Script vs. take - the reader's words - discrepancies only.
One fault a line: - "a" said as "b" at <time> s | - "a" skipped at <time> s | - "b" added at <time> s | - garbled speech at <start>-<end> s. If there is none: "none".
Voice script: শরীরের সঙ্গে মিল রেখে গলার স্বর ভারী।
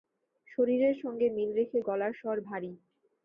none